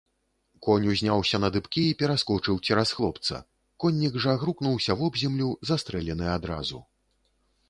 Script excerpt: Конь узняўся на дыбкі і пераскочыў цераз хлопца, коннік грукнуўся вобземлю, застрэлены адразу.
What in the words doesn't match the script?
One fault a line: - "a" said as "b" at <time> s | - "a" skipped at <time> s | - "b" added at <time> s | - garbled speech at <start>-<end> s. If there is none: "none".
- "жа" added at 4.3 s